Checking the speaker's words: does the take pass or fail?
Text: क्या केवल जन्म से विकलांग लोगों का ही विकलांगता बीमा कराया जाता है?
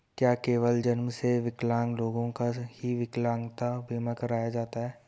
pass